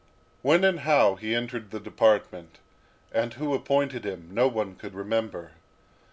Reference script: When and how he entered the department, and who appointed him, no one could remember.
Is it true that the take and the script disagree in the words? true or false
false